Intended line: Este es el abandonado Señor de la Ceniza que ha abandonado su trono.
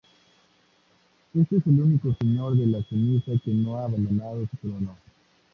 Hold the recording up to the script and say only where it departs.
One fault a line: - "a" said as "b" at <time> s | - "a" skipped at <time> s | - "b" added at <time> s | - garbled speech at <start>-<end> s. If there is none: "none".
- "abandonado" said as "único" at 1.8 s
- "no" added at 3.5 s